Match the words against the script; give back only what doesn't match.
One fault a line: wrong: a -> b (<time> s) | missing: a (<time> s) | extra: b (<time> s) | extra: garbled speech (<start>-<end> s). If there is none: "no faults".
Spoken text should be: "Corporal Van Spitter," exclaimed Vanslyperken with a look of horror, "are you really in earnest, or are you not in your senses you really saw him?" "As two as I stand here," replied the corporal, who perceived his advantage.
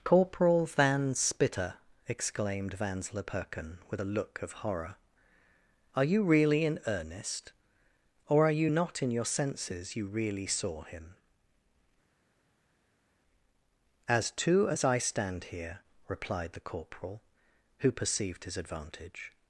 no faults